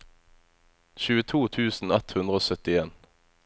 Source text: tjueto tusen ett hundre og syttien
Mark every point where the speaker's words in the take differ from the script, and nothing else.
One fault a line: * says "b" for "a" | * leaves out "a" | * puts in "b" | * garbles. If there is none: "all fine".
all fine